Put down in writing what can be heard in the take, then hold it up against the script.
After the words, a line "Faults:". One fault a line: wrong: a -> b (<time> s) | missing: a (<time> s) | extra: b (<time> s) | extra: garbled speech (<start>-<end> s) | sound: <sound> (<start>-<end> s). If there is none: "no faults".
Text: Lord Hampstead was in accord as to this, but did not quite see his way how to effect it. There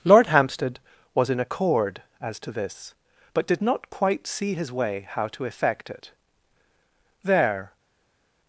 Lord Hampstead was in accord as to this, but did not quite see his way how to effect it. There
Faults:
no faults